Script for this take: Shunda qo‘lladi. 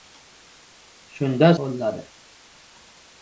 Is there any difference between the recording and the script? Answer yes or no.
no